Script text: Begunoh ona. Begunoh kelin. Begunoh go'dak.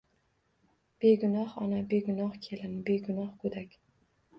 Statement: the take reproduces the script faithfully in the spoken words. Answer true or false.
true